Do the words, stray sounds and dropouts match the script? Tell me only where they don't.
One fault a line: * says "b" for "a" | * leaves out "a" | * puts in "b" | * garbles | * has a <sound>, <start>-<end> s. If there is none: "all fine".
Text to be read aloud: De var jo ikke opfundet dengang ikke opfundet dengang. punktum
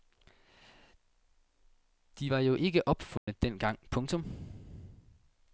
* has a dropout, 3.2-3.3 s
* leaves out "ikke opfundet dengang"